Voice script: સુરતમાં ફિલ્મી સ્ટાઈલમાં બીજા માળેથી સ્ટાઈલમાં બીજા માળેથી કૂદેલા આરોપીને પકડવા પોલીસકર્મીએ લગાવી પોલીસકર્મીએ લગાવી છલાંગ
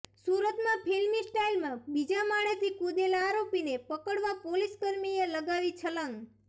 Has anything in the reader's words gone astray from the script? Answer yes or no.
yes